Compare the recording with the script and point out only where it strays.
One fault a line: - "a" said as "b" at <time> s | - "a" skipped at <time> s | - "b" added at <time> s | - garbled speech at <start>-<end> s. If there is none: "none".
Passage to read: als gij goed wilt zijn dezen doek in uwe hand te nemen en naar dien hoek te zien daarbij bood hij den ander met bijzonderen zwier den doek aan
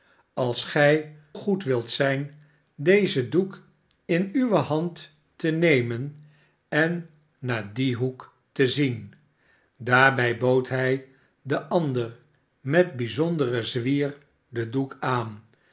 none